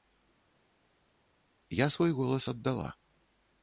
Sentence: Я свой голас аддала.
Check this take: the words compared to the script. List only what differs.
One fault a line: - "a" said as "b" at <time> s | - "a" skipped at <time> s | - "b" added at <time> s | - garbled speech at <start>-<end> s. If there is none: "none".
none